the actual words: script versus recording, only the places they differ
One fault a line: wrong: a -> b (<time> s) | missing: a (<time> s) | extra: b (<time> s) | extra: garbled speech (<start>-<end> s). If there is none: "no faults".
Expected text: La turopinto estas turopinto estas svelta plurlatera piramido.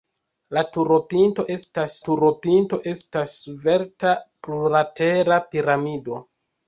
no faults